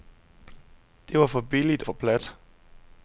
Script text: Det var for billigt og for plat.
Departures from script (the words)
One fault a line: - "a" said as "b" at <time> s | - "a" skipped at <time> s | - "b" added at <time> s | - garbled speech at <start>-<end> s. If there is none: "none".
- "og" skipped at 1.8 s